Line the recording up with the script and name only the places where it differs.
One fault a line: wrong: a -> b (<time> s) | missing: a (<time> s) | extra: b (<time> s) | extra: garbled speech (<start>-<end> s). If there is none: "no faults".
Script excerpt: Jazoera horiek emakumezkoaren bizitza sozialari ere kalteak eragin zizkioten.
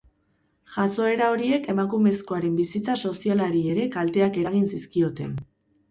no faults